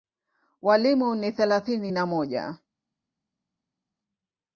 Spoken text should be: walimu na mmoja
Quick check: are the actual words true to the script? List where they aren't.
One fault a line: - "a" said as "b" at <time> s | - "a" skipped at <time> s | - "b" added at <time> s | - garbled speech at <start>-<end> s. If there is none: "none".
- "ni thelathini" added at 1.1 s